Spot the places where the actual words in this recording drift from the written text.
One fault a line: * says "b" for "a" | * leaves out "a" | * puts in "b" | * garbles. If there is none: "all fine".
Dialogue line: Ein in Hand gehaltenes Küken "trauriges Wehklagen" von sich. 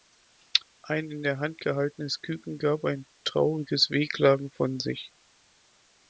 * puts in "der"
* puts in "gab ein"